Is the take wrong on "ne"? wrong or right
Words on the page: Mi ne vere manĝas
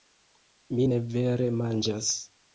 right